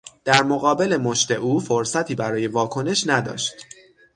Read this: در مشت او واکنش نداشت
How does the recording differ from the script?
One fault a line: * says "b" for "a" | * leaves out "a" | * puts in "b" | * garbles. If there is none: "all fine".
* puts in "مقابل"
* puts in "فرصتی برای"